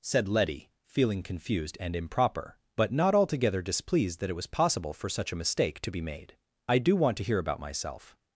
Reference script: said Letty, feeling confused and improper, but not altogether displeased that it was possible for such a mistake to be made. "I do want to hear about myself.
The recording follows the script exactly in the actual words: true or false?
true